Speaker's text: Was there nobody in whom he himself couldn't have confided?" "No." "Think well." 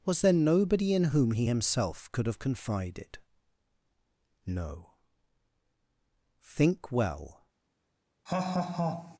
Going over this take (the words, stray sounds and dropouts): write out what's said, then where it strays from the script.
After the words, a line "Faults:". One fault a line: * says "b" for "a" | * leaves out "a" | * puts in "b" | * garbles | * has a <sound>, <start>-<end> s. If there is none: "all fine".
Was there nobody in whom he himself could have confided?" "No." "Think well."
Faults:
* says "could" for "couldn't"
* has a laugh, 8.3-9.2 s